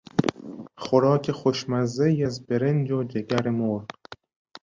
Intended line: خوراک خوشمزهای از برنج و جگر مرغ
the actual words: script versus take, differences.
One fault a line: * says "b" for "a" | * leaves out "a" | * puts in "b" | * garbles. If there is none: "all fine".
all fine